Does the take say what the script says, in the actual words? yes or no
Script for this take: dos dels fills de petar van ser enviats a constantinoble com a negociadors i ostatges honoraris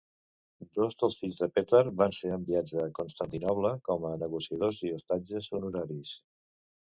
yes